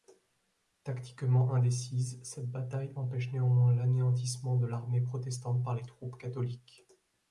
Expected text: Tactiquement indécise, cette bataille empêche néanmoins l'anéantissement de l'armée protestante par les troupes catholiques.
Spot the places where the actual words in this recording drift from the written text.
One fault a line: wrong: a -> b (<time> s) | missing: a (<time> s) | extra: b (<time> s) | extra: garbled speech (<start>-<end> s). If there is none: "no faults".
no faults